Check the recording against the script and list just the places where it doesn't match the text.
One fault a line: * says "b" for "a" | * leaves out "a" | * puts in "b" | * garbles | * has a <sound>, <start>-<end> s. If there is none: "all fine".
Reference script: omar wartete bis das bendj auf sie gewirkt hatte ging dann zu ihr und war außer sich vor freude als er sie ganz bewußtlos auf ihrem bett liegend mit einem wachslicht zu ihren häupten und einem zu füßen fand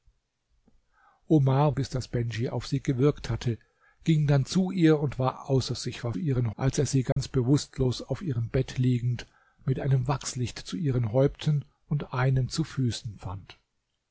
* leaves out "wartete"
* says "ihren" for "freude"
* has a dropout, 7.1-7.2 s